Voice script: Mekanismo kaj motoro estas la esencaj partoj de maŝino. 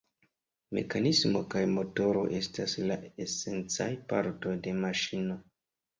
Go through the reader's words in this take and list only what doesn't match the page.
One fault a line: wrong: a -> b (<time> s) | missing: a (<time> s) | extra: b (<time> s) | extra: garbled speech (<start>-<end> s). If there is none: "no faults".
no faults